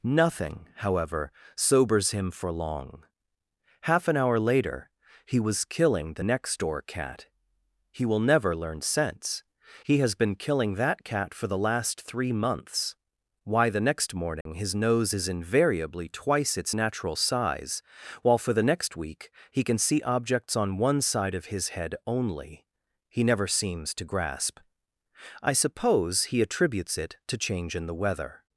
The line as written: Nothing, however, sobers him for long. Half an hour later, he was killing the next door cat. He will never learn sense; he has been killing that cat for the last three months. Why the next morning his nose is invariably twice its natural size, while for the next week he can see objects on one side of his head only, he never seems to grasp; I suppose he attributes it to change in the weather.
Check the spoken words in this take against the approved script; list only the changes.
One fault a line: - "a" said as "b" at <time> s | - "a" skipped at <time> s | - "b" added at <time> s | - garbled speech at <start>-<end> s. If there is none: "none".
none